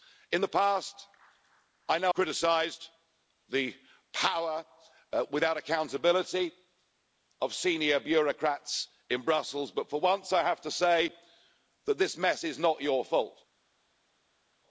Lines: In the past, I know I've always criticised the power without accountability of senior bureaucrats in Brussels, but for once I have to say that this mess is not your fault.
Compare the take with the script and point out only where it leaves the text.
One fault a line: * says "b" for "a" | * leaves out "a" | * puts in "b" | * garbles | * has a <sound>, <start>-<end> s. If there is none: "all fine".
* leaves out "I've always"